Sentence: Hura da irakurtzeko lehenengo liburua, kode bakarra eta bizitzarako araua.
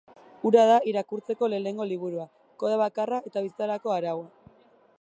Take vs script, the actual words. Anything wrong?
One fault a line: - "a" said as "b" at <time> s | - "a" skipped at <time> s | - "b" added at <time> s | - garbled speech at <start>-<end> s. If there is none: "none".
none